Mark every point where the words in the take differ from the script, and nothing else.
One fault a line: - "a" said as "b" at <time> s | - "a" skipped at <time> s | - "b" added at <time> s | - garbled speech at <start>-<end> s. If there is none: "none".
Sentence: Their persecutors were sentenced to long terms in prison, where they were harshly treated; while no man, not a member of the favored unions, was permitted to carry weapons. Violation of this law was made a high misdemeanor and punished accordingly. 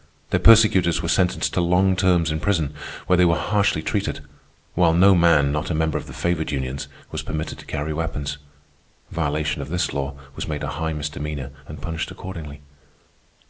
none